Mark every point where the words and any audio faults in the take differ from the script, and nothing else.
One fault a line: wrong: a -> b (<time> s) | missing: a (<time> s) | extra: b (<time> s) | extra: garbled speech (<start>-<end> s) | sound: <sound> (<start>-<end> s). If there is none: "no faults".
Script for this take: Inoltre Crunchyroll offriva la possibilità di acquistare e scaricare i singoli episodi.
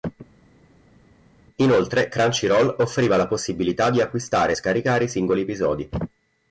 no faults